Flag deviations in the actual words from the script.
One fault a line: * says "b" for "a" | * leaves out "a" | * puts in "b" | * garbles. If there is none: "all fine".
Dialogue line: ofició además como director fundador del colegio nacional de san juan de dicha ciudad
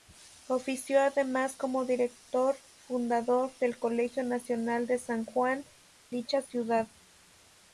* leaves out "de"